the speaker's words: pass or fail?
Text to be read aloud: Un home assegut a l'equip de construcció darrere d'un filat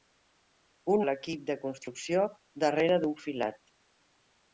fail